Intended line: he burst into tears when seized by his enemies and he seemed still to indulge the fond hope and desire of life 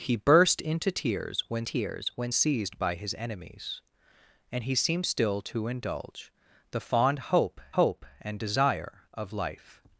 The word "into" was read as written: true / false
true